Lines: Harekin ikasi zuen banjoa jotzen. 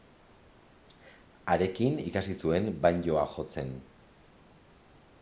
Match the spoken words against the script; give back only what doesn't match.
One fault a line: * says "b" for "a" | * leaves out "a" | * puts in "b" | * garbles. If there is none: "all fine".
all fine